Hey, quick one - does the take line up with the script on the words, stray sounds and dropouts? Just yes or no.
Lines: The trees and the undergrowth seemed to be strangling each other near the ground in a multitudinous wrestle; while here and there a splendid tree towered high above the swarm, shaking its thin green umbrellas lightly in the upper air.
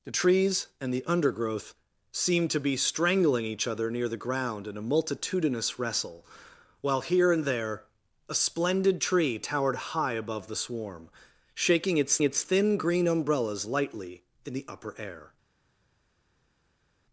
no